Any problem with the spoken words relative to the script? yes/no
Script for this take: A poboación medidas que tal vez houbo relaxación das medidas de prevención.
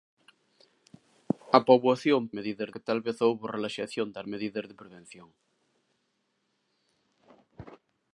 no